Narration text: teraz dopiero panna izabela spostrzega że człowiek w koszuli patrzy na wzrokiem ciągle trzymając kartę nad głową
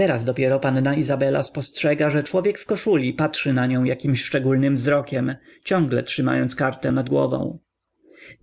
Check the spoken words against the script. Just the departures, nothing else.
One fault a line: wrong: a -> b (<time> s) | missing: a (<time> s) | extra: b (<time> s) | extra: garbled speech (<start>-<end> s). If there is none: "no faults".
extra: nią jakimś szczególnym (3.7 s)